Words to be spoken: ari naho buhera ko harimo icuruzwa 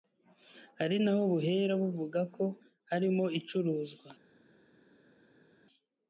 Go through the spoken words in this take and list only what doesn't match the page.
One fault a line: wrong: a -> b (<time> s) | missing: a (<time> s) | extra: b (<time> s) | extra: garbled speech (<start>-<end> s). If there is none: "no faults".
extra: buvuga (1.8 s)